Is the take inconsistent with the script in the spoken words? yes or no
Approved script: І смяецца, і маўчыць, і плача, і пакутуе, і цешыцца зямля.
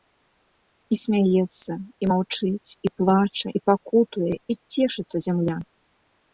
no